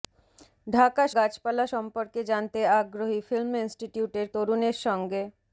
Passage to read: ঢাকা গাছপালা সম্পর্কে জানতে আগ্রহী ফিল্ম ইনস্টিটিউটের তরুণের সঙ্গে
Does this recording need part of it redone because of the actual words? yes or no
no